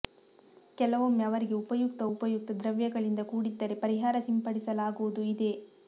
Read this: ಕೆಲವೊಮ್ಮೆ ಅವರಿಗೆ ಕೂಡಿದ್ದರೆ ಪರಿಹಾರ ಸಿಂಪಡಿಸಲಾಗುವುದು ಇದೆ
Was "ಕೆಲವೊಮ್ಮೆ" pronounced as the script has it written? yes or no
yes